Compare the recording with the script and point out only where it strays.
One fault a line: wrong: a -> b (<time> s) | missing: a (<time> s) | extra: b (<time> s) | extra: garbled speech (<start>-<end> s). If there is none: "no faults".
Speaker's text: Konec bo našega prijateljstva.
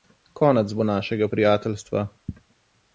no faults